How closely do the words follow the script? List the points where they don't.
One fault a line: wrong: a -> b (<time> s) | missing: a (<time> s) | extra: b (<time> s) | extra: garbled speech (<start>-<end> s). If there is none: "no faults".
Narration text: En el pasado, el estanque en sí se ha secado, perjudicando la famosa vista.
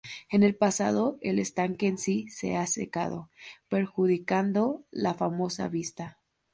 no faults